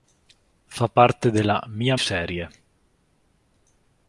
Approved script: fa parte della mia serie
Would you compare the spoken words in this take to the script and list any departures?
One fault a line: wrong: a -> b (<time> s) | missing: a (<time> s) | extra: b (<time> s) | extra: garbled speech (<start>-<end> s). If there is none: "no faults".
no faults